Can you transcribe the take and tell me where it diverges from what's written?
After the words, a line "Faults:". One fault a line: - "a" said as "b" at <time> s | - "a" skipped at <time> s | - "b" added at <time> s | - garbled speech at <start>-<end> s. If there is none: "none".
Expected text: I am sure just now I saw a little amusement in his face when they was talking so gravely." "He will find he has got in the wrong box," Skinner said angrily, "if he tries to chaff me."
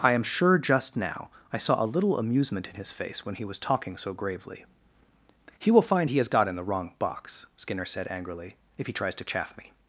I am sure just now I saw a little amusement in his face when he was talking so gravely." "He will find he has got in the wrong box," Skinner said angrily, "if he tries to chaff me."
Faults:
- "they" said as "he" at 3.4 s